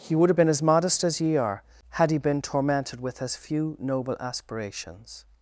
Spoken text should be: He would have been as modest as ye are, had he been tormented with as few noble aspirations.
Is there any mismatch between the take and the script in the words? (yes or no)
no